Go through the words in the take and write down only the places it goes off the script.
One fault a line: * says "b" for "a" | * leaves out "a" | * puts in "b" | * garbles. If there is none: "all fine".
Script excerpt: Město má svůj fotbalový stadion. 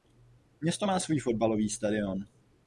all fine